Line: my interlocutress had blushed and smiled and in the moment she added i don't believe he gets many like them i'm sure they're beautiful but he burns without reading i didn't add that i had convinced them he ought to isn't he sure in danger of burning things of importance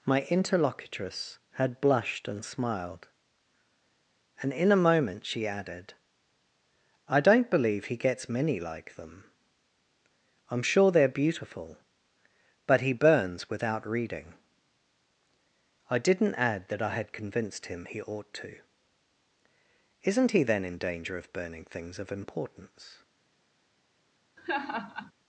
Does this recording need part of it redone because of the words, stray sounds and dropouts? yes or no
yes